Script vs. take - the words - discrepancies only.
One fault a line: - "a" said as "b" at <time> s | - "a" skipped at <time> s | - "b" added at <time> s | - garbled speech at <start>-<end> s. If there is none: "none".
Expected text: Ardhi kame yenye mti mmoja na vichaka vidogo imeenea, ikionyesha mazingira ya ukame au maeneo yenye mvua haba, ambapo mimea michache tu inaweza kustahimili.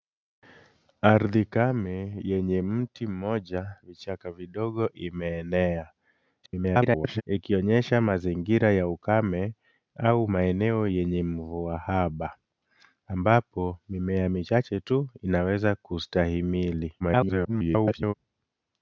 - "na" skipped at 3.8 s
- garbled speech at 6.4-7.2 s
- garbled speech at 17.0-18.1 s